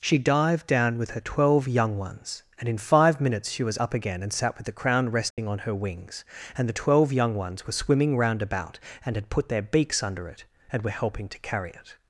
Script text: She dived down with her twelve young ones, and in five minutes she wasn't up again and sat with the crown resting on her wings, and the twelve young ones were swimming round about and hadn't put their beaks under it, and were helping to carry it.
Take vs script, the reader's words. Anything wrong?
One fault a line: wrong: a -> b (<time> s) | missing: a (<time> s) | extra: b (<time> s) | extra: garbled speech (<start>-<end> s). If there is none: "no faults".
wrong: wasn't -> was (3.6 s)
wrong: hadn't -> had (9.2 s)